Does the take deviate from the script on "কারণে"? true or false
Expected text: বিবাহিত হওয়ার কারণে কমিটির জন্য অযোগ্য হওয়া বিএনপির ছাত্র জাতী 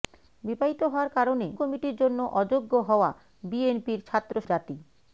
false